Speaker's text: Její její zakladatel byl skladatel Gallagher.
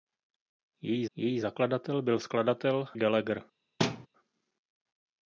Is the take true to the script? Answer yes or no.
yes